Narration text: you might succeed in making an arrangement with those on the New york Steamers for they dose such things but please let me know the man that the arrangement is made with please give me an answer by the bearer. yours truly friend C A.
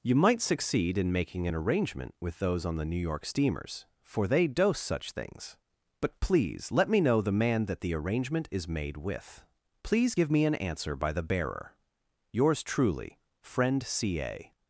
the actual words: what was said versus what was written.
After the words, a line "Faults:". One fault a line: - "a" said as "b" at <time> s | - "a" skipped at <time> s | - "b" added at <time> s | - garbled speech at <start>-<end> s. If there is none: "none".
you might succeed in making an arrangement with those on the New york Steamers for they dose such things but please let me know the man that the arrangement is made with please give me an answer by the bearer. yours truly friend C A.
Faults:
none